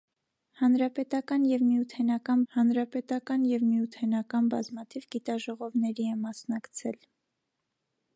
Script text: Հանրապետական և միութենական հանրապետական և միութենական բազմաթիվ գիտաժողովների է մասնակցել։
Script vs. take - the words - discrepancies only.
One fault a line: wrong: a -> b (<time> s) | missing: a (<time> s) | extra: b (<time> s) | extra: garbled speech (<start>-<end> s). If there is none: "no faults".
no faults